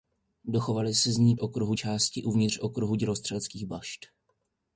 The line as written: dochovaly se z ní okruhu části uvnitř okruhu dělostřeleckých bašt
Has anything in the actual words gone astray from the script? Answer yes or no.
no